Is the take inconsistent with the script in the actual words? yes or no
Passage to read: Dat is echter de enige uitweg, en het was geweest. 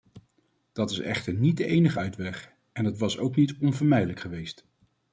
yes